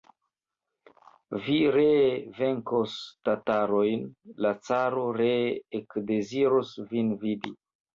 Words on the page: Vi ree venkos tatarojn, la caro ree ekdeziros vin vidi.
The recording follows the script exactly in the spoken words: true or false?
true